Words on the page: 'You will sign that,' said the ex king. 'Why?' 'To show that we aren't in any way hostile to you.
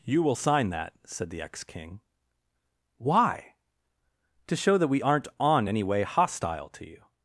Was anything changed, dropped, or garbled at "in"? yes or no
yes